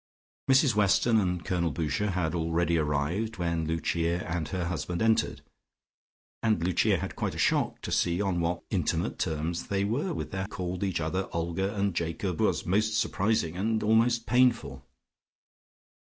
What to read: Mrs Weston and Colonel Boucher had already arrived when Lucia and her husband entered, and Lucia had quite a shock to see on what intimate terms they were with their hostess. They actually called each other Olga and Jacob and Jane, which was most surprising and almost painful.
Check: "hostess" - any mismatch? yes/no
yes